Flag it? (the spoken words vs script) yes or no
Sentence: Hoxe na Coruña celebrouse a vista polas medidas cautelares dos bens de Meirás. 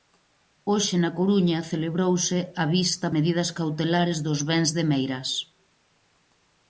yes